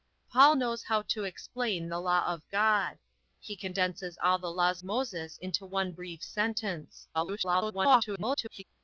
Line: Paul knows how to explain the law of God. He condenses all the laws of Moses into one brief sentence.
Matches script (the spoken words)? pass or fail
fail